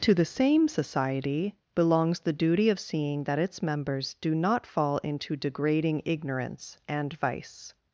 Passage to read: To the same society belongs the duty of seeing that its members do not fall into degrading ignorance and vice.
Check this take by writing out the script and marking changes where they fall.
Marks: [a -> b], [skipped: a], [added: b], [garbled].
To the same society belongs the duty of seeing that its members do not fall into degrading ignorance and vice.